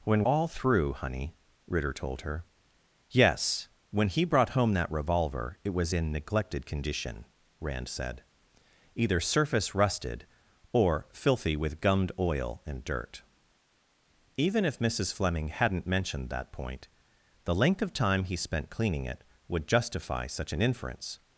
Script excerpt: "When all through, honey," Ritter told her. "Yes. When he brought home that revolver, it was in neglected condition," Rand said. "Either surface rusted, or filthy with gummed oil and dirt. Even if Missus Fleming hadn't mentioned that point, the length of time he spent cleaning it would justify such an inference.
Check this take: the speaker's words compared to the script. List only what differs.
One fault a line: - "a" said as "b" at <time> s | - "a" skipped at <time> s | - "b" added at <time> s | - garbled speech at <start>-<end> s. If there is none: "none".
none